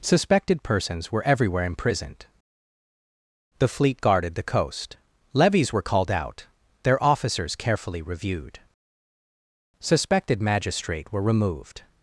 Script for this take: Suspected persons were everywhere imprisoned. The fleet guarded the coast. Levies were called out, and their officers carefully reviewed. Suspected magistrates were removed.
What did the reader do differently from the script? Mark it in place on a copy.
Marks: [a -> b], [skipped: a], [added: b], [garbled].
Suspected persons were everywhere imprisoned. The fleet guarded the coast. Levies were called out, [skipped: and] their officers carefully reviewed. Suspected [magistrates -> magistrate] were removed.